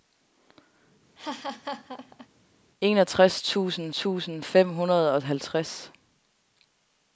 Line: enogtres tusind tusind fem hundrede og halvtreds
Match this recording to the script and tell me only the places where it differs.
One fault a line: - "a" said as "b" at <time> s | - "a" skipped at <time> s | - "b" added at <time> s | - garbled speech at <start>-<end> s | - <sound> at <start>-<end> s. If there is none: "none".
- laugh at 1.2-2.3 s